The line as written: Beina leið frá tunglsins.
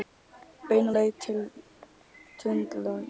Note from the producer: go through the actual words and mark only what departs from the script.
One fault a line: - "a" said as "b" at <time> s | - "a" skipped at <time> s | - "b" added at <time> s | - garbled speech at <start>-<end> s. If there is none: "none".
- "frá" said as "til" at 1.3 s